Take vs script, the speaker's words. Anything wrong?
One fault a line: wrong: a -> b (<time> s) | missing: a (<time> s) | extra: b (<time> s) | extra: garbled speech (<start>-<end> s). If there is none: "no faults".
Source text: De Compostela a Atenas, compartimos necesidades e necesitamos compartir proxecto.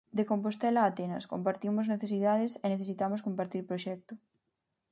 no faults